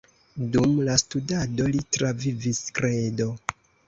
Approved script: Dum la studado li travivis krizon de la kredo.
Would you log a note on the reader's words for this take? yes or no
yes